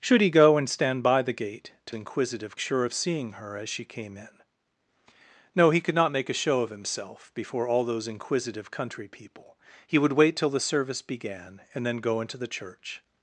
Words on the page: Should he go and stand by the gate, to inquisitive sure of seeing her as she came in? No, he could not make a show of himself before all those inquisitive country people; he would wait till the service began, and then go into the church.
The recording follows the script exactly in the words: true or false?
true